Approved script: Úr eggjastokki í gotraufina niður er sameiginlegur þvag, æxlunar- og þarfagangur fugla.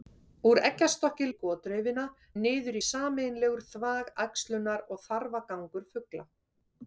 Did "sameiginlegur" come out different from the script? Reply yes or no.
no